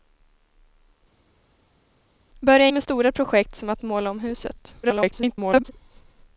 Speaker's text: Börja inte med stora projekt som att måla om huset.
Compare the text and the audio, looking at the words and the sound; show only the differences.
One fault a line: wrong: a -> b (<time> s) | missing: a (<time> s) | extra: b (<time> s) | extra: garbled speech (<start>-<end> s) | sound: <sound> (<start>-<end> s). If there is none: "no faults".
missing: inte (2.7 s)
extra: garbled speech (4.8-5.7 s)